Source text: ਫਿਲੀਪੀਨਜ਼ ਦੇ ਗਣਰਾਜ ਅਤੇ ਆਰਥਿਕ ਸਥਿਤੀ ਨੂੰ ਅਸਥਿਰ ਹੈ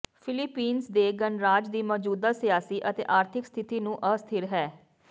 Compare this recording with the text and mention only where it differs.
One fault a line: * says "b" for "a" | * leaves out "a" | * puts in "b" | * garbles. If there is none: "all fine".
* puts in "ਦੀ ਮੌਜੂਦਾ ਸਿਆਸੀ"